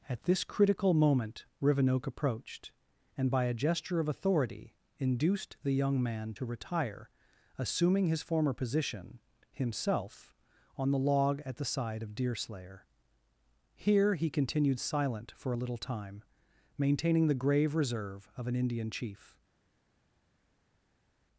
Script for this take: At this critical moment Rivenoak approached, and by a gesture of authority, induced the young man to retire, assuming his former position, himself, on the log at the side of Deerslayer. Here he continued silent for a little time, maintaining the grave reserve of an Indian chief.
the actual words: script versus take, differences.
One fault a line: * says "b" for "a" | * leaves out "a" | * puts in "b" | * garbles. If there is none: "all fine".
all fine